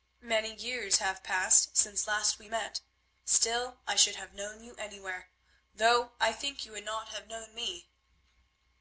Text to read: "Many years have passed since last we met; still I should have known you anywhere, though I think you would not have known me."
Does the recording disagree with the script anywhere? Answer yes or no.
no